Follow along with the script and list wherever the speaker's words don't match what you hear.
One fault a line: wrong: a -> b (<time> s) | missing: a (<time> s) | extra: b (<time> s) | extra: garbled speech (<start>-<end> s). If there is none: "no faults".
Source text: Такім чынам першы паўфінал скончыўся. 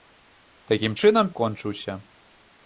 missing: першы паўфінал (1.3 s)